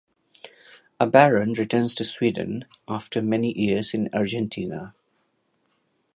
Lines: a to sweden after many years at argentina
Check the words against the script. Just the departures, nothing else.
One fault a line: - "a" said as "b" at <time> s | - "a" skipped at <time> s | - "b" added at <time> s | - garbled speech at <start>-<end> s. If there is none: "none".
- "baron returns" added at 1.1 s
- "at" said as "in" at 3.9 s